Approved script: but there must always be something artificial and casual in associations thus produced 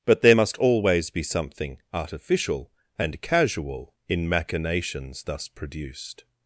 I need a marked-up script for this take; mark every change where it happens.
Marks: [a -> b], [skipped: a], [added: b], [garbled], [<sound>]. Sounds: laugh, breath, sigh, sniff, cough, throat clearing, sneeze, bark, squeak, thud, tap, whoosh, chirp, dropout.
but there must always be something artificial and casual in [associations -> machinations] thus produced